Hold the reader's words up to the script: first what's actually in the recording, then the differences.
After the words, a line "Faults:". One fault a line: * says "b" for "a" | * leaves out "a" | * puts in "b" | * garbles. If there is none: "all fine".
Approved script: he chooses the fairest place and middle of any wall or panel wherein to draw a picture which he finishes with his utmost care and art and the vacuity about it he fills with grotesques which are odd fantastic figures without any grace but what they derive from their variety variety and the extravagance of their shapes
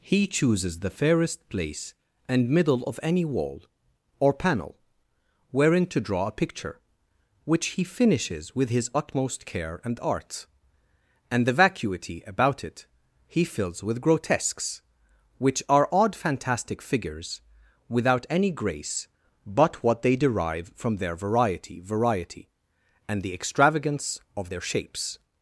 he chooses the fairest place and middle of any wall or panel wherein to draw a picture which he finishes with his utmost care and art and the vacuity about it he fills with grotesques which are odd fantastic figures without any grace but what they derive from their variety variety and the extravagance of their shapes
Faults:
all fine